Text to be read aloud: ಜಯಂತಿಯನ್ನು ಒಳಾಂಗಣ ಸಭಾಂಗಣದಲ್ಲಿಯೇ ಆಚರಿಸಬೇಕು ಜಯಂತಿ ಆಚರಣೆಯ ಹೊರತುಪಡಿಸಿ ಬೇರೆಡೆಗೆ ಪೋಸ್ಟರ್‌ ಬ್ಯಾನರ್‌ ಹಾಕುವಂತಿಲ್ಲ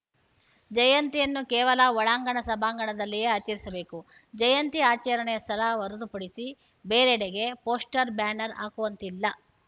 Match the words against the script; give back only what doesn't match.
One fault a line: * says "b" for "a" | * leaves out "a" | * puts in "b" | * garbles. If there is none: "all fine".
* puts in "ಕೇವಲ"
* puts in "ಸ್ಥಳ"